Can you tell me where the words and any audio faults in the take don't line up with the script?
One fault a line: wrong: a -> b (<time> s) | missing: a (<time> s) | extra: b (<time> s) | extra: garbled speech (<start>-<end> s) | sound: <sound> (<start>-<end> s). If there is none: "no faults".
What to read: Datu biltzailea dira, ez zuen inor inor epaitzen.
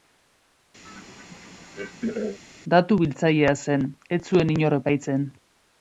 sound: throat clearing (0.8-2.4 s)
wrong: dira -> zen (3.6 s)
missing: inor (4.8 s)